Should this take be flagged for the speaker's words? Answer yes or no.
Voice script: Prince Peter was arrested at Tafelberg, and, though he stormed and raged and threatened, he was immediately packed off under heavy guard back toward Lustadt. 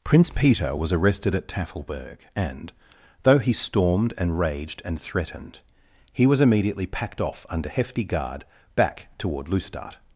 yes